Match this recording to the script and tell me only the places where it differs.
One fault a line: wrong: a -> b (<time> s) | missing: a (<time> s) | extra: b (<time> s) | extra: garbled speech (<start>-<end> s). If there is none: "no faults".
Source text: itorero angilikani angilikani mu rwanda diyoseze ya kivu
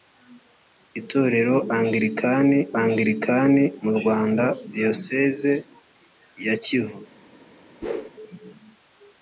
no faults